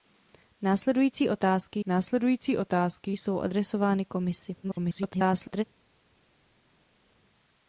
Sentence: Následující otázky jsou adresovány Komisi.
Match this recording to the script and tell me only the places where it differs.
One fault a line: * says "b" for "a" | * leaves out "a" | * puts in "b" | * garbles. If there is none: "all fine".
* puts in "následující otázky"
* garbles